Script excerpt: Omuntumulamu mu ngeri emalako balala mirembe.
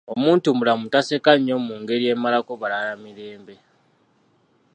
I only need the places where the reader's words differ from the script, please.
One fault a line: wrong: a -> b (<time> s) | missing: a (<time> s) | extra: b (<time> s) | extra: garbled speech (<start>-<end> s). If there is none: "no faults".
extra: taseka nnyo (0.9 s)